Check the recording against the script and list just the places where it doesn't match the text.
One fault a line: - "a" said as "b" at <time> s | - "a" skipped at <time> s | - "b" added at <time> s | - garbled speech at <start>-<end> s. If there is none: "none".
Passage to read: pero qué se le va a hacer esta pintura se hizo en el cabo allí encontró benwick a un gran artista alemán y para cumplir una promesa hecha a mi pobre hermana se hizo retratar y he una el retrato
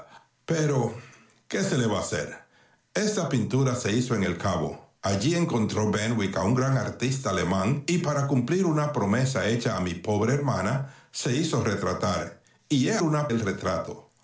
none